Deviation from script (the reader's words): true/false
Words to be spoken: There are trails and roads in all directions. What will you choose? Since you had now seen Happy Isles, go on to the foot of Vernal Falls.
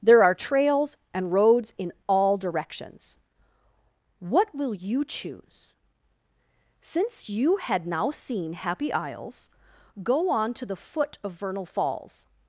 false